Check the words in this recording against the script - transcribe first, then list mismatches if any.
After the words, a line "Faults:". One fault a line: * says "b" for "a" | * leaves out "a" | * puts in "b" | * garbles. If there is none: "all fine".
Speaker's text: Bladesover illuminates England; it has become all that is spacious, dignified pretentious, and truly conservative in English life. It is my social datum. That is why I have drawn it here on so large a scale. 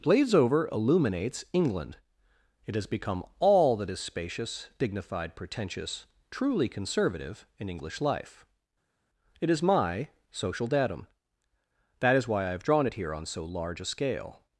Bladesover illuminates England; it has become all that is spacious, dignified pretentious, truly conservative in English life. It is my social datum. That is why I have drawn it here on so large a scale.
Faults:
* leaves out "and"